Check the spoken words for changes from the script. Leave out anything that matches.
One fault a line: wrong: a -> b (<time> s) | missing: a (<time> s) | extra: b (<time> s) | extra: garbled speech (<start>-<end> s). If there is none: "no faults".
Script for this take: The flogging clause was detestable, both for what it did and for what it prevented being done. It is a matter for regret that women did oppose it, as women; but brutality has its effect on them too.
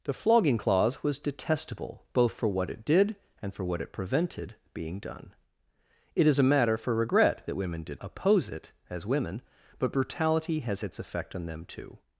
no faults